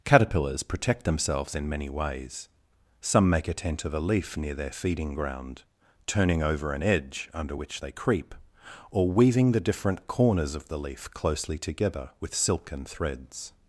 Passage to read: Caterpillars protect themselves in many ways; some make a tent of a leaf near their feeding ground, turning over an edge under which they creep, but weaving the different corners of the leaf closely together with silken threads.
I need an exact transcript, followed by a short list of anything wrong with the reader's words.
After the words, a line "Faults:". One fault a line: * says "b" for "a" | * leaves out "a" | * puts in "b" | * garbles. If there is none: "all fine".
Caterpillars protect themselves in many ways; some make a tent of a leaf near their feeding ground, turning over an edge under which they creep, or weaving the different corners of the leaf closely together with silken threads.
Faults:
* says "or" for "but"